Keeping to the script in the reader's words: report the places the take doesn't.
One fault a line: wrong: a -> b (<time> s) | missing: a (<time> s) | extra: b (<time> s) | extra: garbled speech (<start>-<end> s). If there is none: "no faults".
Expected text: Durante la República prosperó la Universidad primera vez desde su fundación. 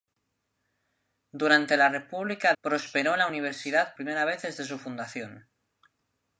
no faults